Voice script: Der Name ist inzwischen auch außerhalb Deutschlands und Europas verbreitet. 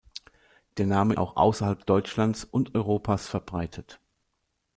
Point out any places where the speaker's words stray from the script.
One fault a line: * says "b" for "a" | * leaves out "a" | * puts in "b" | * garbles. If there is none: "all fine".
* leaves out "ist inzwischen"